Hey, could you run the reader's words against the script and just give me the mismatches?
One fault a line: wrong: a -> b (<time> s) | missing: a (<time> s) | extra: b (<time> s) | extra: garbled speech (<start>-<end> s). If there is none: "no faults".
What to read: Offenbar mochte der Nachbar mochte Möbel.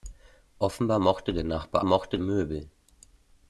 no faults